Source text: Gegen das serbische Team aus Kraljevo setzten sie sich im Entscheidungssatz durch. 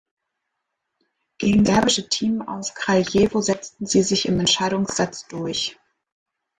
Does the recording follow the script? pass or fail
fail